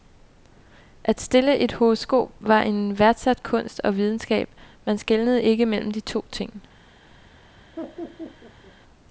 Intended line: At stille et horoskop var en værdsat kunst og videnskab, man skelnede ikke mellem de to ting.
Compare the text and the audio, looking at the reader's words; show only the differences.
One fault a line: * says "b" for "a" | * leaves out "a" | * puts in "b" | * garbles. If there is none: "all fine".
all fine